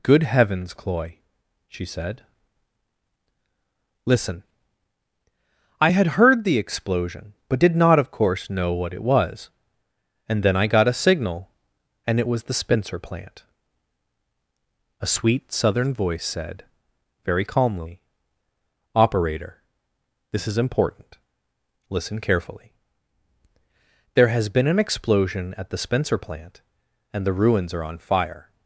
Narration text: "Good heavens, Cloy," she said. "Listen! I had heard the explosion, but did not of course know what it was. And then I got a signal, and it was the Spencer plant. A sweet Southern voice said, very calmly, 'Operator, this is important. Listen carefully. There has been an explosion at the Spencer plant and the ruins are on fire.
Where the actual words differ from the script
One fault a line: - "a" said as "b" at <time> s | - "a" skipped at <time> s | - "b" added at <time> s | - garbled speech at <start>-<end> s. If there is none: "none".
none